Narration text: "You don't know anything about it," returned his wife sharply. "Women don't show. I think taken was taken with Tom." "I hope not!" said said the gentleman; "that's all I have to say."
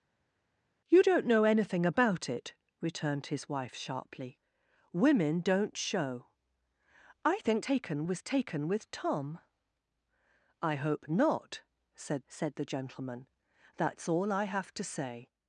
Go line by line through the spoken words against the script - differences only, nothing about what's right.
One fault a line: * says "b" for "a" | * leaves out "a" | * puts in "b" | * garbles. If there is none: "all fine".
all fine